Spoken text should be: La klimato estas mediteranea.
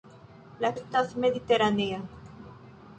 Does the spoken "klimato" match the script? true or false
false